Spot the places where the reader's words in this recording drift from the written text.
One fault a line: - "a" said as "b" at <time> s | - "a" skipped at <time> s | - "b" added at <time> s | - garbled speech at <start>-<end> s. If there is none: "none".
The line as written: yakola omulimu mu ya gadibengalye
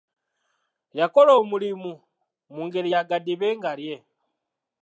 - "ngeri" added at 2.7 s